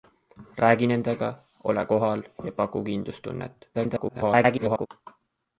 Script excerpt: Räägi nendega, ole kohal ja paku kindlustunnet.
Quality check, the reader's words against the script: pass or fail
fail